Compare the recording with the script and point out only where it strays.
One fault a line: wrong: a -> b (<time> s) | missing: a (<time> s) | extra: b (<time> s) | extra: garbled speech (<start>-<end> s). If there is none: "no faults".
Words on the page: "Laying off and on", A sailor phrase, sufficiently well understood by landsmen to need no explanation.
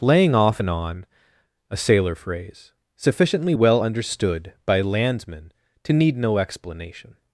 no faults